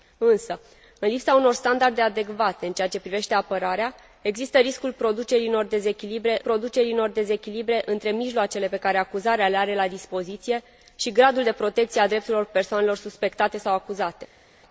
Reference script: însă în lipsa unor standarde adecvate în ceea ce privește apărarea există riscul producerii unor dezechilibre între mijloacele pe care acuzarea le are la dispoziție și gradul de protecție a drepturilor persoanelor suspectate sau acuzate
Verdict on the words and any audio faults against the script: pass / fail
fail